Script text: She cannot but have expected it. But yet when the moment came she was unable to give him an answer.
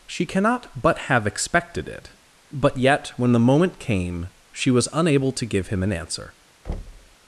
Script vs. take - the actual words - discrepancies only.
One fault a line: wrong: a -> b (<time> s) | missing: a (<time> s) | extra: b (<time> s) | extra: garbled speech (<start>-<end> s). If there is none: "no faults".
no faults